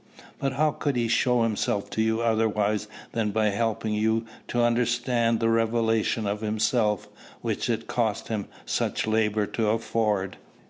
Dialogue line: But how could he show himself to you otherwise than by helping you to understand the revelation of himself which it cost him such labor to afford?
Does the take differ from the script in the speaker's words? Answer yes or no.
no